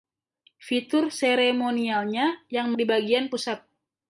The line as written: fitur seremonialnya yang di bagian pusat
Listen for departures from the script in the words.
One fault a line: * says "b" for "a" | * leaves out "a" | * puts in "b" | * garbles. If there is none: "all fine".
all fine